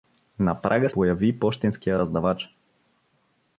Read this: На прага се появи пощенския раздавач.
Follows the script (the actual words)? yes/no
no